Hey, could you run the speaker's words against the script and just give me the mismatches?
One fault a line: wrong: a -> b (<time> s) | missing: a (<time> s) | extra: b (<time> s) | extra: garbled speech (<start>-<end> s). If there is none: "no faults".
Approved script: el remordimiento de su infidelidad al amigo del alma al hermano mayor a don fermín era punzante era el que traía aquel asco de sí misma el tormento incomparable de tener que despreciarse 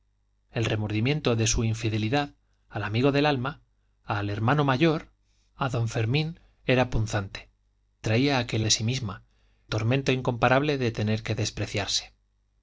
missing: era el que (7.5 s)
missing: asco (8.7 s)
missing: el (9.2 s)